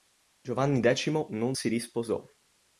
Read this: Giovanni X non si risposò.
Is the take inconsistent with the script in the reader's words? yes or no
no